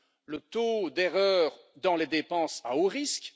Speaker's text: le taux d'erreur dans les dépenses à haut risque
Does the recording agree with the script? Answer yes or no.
yes